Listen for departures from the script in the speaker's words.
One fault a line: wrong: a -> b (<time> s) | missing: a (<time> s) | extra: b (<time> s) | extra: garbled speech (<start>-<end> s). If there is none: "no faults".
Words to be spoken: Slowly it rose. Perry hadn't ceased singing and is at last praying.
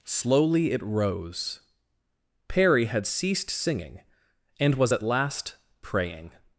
wrong: hadn't -> had (2.9 s)
wrong: is -> was (4.8 s)